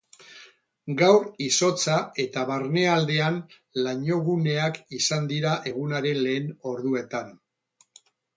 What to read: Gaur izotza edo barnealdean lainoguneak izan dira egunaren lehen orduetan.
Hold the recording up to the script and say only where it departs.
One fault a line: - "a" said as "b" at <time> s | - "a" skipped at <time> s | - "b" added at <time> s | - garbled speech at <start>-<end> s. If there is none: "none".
- "edo" said as "eta" at 2.2 s